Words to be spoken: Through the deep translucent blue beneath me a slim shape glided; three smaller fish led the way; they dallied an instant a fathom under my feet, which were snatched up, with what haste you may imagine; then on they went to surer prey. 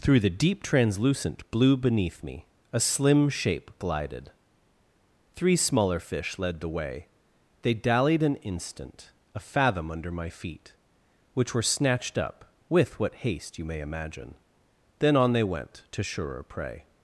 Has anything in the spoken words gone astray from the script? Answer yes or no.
no